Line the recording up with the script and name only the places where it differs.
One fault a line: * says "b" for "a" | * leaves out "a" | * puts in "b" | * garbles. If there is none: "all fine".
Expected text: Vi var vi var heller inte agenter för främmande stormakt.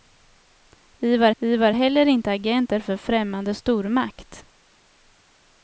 all fine